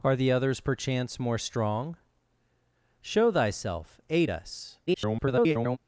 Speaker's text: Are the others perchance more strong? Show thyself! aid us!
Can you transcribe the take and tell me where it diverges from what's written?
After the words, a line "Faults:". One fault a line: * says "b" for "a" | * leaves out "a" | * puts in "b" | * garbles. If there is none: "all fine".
Are the others perchance more strong? Show thyself! aid us! [garbled]
Faults:
* garbles